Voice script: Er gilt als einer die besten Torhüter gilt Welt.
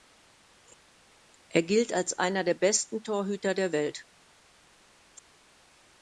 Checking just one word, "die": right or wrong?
wrong